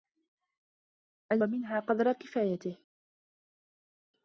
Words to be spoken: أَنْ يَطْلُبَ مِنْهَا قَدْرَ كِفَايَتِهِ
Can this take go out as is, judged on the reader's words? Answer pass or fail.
fail